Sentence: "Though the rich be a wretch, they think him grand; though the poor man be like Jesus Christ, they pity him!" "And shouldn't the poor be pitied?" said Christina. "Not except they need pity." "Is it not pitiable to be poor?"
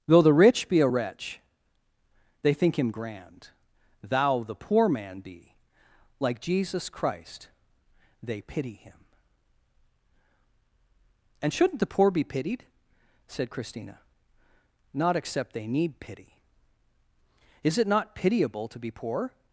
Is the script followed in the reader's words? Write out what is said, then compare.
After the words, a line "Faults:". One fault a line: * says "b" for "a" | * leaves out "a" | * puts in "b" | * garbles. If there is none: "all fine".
"Though the rich be a wretch, they think him grand; thou the poor man be like Jesus Christ, they pity him!" "And shouldn't the poor be pitied?" said Christina. "Not except they need pity." "Is it not pitiable to be poor?"
Faults:
* says "thou" for "though"